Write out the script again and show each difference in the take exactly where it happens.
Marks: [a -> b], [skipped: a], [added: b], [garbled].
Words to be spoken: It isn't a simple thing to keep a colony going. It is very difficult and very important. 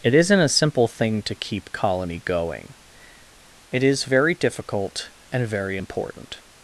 It isn't a simple thing to keep [skipped: a] colony going. It is very difficult and very important.